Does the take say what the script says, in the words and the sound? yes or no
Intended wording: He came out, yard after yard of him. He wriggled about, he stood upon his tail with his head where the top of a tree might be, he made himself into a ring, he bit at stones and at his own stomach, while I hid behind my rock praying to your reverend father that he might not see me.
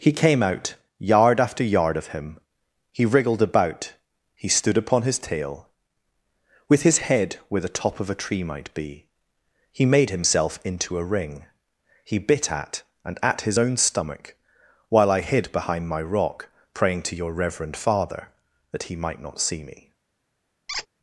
no